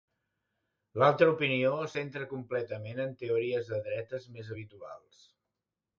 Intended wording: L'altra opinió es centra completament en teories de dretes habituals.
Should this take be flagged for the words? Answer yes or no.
yes